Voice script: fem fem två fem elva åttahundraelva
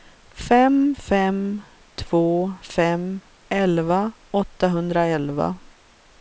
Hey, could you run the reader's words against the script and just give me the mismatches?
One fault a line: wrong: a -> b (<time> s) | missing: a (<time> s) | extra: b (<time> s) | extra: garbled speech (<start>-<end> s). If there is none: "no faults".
no faults